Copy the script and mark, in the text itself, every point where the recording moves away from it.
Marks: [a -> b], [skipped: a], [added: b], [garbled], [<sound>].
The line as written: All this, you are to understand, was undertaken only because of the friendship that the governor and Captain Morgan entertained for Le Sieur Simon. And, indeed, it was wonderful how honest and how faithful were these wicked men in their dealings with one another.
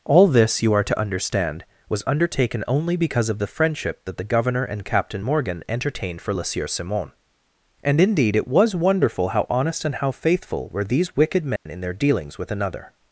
All this, you are to understand, was undertaken only because of the friendship that the governor and Captain Morgan entertained for Le Sieur Simon. And, indeed, it was wonderful how honest and how faithful were these wicked men [dropout] in their dealings with [skipped: one] another.